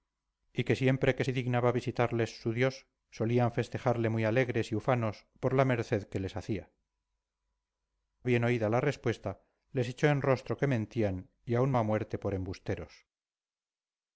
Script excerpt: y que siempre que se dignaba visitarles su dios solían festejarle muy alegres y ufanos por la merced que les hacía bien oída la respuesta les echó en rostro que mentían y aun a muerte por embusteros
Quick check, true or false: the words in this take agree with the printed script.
true